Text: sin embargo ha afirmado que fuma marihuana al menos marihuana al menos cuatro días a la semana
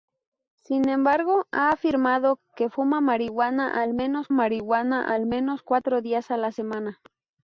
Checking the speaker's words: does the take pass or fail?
pass